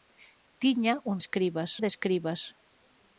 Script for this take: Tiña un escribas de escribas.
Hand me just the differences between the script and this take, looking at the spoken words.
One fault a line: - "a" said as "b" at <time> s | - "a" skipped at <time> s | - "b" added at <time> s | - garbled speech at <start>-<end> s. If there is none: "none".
none